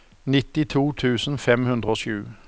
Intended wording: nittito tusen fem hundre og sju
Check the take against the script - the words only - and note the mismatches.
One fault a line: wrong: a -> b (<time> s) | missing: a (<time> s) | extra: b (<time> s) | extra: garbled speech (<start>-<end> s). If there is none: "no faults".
no faults